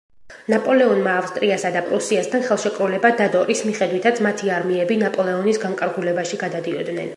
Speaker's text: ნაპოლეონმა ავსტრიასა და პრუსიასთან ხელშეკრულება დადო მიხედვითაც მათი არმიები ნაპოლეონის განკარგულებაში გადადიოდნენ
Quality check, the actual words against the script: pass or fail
fail